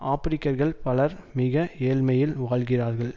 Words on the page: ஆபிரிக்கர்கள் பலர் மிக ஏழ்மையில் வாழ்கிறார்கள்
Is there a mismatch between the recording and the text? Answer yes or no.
no